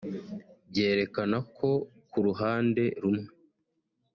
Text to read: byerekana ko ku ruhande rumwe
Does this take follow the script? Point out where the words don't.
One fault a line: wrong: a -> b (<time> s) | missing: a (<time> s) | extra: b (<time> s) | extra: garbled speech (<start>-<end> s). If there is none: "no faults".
no faults